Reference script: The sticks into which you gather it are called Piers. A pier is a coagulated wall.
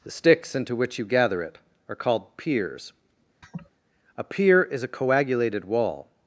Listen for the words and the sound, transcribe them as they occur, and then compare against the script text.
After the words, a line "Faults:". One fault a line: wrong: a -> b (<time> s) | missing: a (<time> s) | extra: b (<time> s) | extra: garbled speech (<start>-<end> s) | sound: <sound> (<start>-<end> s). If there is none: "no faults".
The sticks into which you gather it are called Piers. A pier is a coagulated wall.
Faults:
sound: laugh (3.4-3.7 s)